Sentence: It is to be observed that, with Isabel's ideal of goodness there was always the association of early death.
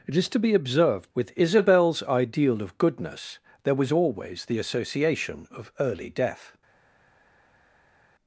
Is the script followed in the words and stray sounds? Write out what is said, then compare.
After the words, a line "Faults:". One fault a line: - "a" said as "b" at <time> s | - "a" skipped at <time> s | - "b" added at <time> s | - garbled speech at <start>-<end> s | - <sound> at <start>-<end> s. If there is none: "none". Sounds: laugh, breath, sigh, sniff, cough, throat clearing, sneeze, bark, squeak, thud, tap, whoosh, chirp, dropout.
It is to be observed with Isabel's ideal of goodness there was always the association of early death.
Faults:
- "that" skipped at 1.1 s